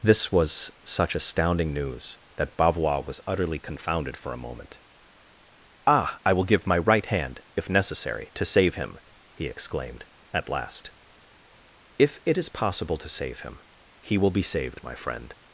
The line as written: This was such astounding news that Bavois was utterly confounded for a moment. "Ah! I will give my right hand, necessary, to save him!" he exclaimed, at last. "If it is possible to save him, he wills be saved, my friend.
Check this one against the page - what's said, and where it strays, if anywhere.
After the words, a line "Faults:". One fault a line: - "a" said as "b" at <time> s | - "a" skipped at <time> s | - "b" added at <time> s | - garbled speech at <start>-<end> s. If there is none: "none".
This was such astounding news that Bavois was utterly confounded for a moment. "Ah! I will give my right hand, if necessary, to save him!" he exclaimed, at last. "If it is possible to save him, he will be saved, my friend.
Faults:
- "if" added at 7.6 s
- "wills" said as "will" at 14.2 s